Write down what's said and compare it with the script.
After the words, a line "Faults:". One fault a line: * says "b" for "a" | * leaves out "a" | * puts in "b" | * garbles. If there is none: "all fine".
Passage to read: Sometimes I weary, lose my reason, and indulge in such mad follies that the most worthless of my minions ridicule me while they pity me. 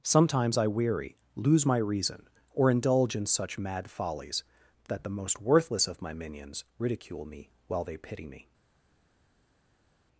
Sometimes I weary, lose my reason, or indulge in such mad follies that the most worthless of my minions ridicule me while they pity me.
Faults:
* says "or" for "and"